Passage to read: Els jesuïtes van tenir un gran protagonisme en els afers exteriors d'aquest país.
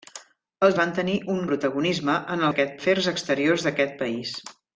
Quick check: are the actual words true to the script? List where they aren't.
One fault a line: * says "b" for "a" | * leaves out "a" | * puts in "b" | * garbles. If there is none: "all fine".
* leaves out "jesuïtes"
* leaves out "gran"
* says "d'aquest" for "els"